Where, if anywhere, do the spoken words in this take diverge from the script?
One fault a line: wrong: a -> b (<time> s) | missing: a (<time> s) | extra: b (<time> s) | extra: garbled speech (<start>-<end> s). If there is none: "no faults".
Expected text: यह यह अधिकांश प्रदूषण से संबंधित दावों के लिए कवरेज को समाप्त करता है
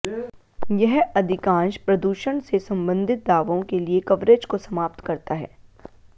missing: यह (1.0 s)